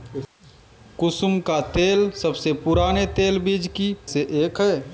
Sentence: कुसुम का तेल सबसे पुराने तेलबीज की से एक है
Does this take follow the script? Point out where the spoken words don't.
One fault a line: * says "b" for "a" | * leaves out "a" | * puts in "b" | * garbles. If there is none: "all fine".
all fine